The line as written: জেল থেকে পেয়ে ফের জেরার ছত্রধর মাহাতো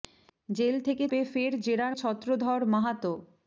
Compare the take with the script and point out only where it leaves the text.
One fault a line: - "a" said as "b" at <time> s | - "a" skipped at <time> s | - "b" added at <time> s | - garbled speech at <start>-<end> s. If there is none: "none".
none